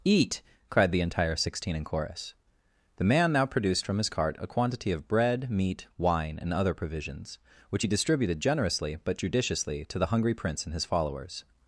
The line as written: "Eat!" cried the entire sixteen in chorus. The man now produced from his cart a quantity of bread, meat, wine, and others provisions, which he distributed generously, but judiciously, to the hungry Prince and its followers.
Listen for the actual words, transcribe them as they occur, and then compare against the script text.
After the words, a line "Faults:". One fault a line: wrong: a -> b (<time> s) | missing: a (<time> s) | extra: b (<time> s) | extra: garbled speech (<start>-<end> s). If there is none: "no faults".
"Eat!" cried the entire sixteen in chorus. The man now produced from his cart a quantity of bread, meat, wine, and other provisions, which he distributed generously, but judiciously, to the hungry Prince and his followers.
Faults:
wrong: others -> other (6.5 s)
wrong: its -> his (10.7 s)